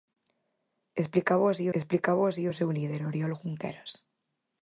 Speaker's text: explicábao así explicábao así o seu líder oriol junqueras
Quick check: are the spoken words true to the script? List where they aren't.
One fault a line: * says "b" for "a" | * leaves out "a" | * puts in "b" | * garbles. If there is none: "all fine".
all fine